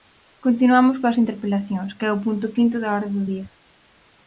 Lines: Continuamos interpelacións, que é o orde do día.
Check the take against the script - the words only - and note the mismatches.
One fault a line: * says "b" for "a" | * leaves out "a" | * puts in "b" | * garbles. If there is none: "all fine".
* puts in "coas"
* puts in "punto quinto da"